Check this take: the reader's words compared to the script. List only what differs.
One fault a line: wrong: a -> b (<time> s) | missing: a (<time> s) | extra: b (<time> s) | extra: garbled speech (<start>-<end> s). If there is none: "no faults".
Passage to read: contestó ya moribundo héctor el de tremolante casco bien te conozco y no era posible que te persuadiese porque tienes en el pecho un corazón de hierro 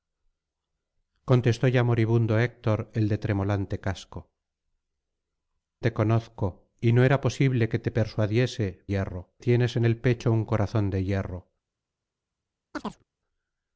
missing: bien (4.3 s)
wrong: porque -> hierro (8.9 s)